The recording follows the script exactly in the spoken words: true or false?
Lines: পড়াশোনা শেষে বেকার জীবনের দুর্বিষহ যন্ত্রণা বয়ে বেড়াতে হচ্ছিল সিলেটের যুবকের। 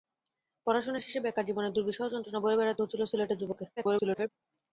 false